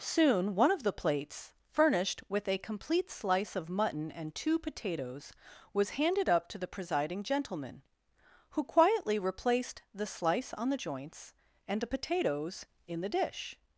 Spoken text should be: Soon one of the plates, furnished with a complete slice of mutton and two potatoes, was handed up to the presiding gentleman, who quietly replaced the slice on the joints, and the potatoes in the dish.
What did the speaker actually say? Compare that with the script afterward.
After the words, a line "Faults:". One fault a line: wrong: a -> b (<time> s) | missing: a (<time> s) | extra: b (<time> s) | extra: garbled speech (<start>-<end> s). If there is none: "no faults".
Soon one of the plates, furnished with a complete slice of mutton and two potatoes, was handed up to the presiding gentleman, who quietly replaced the slice on the joints, and the potatoes in the dish.
Faults:
no faults